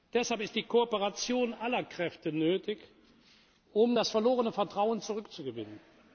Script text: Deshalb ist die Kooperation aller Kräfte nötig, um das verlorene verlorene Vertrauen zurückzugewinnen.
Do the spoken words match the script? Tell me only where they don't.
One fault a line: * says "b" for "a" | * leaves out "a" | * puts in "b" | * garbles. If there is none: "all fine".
* leaves out "verlorene"